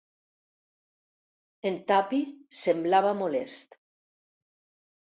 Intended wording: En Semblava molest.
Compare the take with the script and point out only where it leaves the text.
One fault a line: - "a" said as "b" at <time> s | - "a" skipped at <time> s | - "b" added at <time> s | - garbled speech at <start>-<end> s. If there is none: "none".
- "Tuppy" added at 1.9 s